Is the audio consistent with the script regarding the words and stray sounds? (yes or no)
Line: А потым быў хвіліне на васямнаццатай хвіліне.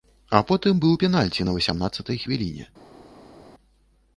no